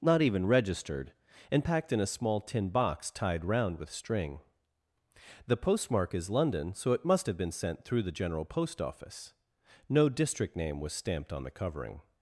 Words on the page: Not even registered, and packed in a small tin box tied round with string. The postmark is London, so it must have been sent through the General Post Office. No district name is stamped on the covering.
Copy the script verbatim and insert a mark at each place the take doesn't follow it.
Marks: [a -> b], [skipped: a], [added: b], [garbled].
Not even registered, and packed in a small tin box tied round with string. The postmark is London, so it must have been sent through the General Post Office. No district name [is -> was] stamped on the covering.